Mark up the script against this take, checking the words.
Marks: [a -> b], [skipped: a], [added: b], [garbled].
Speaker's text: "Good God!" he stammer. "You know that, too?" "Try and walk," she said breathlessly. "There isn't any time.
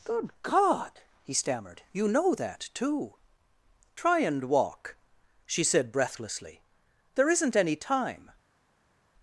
"Good God!" he [stammer. -> stammered] "You know that, too?" "Try and walk," she said breathlessly. "There isn't any time.